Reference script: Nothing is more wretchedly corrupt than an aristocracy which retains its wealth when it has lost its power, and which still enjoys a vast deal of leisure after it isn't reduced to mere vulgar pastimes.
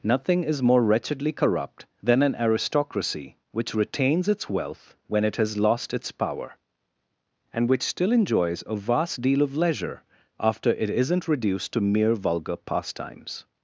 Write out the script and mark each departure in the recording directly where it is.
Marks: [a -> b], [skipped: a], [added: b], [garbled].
Nothing is more wretchedly corrupt than an aristocracy which retains its wealth when it has lost its power, and which still enjoys a vast deal of leisure after it isn't reduced to mere vulgar pastimes.